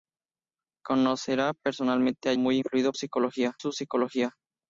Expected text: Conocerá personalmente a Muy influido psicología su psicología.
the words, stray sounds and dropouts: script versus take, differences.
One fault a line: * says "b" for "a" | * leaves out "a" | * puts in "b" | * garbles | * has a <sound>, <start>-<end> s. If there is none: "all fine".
all fine